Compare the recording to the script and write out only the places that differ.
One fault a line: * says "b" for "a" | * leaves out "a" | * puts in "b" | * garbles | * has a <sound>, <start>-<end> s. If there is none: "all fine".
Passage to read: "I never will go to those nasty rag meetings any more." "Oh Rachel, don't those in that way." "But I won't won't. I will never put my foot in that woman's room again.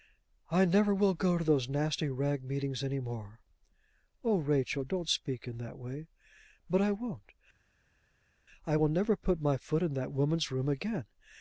* says "speak" for "those"
* leaves out "won't"